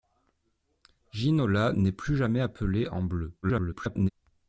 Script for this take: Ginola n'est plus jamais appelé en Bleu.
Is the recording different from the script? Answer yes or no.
yes